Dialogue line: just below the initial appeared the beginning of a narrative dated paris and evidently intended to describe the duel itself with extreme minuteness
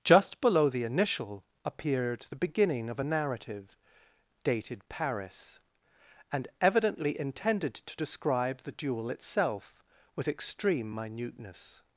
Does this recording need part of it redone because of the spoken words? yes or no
no